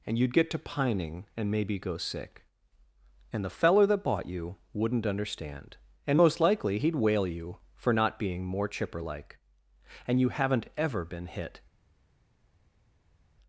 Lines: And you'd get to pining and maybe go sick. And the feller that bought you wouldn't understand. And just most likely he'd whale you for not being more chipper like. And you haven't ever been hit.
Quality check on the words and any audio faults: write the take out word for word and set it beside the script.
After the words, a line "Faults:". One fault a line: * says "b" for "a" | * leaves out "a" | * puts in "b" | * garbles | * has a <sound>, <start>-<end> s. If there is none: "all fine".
And you'd get to pining and maybe go sick. And the feller that bought you wouldn't understand. And most likely he'd whale you for not being more chipper like. And you haven't ever been hit.
Faults:
* leaves out "just"